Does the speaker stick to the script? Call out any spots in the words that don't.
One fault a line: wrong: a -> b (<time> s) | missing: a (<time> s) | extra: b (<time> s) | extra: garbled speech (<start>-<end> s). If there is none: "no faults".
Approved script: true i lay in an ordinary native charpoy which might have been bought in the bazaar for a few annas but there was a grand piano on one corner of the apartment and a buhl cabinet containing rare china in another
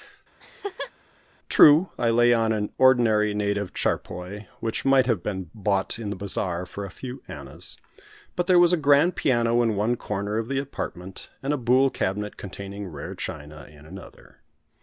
wrong: in -> on (2.3 s)
wrong: on -> in (9.6 s)